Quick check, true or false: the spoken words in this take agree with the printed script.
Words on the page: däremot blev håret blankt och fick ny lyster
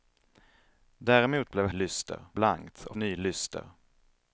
false